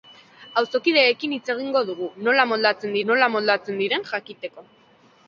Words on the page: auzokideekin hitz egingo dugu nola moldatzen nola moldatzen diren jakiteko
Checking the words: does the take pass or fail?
pass